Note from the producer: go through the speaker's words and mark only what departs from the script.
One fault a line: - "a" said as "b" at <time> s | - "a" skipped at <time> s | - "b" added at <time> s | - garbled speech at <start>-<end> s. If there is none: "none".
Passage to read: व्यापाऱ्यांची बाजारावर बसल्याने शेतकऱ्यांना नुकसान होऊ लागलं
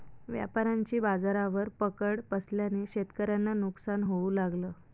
- "पकड" added at 1.8 s